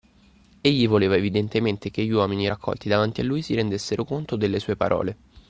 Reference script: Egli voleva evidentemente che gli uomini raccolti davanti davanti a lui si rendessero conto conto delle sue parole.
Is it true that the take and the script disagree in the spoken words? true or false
true